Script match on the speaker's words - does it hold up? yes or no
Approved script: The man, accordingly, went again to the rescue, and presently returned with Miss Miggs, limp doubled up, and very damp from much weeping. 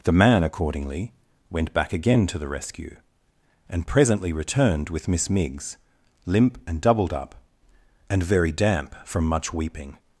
no